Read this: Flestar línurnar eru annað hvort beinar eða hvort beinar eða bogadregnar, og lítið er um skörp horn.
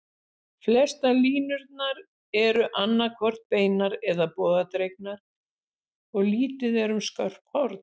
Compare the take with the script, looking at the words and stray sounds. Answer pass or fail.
fail